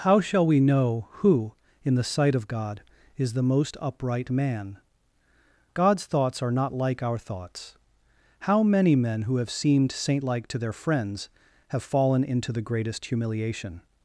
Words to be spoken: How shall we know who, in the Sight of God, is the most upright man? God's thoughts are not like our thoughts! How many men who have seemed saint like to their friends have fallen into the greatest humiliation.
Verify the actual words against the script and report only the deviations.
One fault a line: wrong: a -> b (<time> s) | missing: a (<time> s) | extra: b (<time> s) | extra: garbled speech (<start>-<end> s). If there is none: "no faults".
no faults